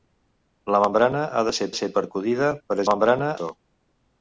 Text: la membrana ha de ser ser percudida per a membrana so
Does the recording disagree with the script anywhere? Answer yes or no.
no